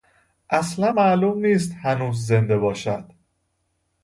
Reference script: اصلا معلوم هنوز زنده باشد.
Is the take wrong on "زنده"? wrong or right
right